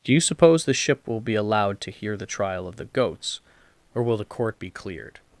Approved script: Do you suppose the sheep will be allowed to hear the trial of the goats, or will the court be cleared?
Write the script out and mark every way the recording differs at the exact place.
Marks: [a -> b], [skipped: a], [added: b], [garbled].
Do you suppose the [sheep -> ship] will be allowed to hear the trial of the goats, or will the court be cleared?